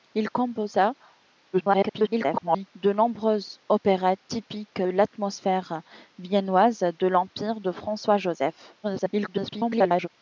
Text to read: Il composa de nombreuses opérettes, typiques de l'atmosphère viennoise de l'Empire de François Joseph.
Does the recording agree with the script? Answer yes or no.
no